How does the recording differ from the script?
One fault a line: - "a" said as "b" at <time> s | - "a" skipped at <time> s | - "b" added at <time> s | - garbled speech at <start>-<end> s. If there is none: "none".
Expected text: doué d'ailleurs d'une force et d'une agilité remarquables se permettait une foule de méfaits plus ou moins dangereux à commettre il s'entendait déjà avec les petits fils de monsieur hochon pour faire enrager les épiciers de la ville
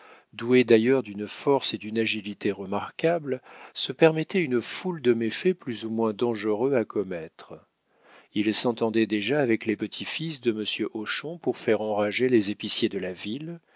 none